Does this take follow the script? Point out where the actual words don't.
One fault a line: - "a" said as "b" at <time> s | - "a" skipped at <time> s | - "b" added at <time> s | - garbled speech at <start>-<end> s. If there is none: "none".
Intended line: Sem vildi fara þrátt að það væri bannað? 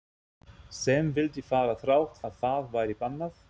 none